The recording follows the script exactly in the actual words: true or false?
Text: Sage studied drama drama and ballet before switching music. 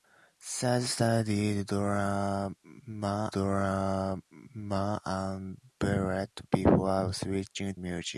true